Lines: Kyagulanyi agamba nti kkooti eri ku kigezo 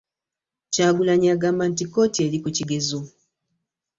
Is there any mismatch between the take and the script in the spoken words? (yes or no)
no